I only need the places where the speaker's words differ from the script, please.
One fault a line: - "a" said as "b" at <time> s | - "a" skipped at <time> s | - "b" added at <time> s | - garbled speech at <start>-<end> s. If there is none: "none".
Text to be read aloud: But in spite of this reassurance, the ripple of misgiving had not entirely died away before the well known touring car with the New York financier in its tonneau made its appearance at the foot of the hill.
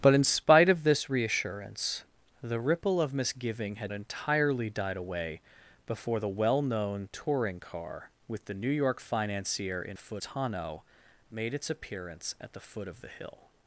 - "not" skipped at 3.9 s
- "its" said as "foot" at 10.0 s